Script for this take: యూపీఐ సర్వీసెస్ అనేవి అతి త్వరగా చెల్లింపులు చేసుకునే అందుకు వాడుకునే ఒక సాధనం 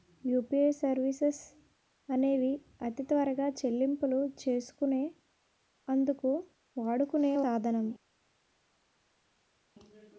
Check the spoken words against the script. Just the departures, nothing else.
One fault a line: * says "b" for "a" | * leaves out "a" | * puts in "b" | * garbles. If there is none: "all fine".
* leaves out "ఒక"